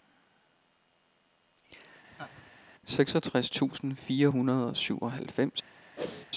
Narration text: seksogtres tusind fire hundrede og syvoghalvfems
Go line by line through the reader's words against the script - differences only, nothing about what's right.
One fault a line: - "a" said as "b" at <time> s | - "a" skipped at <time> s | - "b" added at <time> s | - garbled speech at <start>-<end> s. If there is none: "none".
none